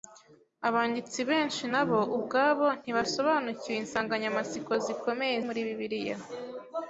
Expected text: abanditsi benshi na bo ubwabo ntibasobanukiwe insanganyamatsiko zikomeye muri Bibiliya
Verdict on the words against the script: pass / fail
pass